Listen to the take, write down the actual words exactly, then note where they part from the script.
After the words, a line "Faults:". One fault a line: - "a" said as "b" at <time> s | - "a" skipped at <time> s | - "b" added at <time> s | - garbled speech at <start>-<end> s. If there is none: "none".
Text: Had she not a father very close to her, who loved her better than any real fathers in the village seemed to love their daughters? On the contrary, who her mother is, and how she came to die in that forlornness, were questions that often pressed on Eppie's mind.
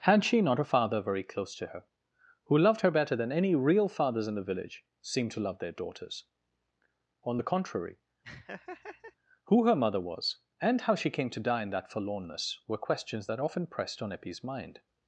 Had she not a father very close to her, who loved her better than any real fathers in the village seemed to love their daughters? On the contrary, who her mother was, and how she came to die in that forlornness, were questions that often pressed on Eppie's mind.
Faults:
- "is" said as "was" at 10.0 s